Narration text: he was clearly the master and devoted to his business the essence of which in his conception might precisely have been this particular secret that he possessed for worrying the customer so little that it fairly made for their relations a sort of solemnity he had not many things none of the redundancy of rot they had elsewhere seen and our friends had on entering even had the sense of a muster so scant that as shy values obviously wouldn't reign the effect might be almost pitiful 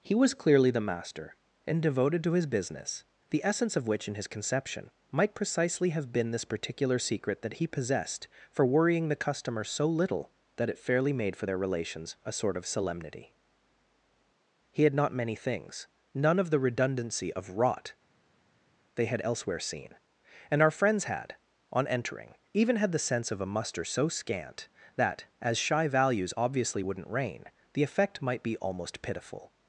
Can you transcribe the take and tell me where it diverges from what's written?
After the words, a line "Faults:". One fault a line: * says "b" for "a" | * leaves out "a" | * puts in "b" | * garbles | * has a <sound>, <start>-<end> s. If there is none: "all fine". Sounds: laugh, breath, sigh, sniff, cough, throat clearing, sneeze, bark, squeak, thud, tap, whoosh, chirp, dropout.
he was clearly the master and devoted to his business the essence of which in his conception might precisely have been this particular secret that he possessed for worrying the customer so little that it fairly made for their relations a sort of solemnity he had not many things none of the redundancy of rot they had elsewhere seen and our friends had on entering even had the sense of a muster so scant that as shy values obviously wouldn't reign the effect might be almost pitiful
Faults:
all fine